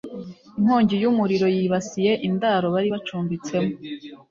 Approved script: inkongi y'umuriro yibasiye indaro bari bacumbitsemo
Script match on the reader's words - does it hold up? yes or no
yes